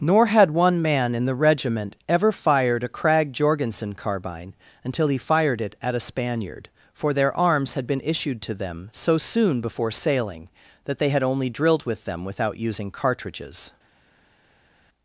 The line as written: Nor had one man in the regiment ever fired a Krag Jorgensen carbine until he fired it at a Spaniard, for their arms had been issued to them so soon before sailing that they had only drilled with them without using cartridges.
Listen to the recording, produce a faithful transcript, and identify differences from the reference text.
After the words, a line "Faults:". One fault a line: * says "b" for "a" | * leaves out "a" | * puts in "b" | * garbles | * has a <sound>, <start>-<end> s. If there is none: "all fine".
Nor had one man in the regiment ever fired a Krag Jorgensen carbine until he fired it at a Spaniard, for their arms had been issued to them so soon before sailing that they had only drilled with them without using cartridges.
Faults:
all fine